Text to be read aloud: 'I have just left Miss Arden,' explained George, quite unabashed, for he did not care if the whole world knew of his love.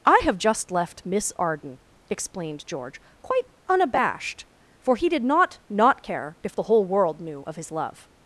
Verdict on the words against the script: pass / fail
fail